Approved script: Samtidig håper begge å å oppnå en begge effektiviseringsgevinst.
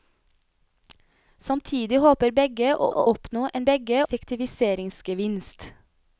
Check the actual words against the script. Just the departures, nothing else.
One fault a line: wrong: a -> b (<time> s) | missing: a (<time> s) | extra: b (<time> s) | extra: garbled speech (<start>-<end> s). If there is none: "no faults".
no faults